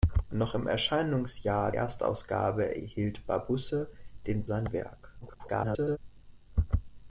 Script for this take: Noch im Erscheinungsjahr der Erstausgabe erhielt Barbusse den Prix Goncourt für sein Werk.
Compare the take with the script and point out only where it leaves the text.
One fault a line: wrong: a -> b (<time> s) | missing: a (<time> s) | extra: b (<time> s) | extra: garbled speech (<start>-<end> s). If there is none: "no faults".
missing: der (1.7 s)
missing: Prix Goncourt für (4.5 s)
extra: garbled speech (5.2-6.0 s)